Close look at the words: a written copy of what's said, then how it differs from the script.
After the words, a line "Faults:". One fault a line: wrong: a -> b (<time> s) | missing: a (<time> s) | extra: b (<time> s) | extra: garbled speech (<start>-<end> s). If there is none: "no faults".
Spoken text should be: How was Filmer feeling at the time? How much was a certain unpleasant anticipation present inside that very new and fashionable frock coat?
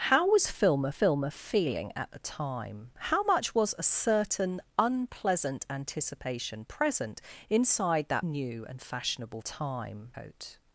How was Filmer Filmer feeling at the time? How much was a certain unpleasant anticipation present inside that new and fashionable time coat?
Faults:
extra: Filmer (0.9 s)
missing: very (8.3 s)
wrong: frock -> time (9.4 s)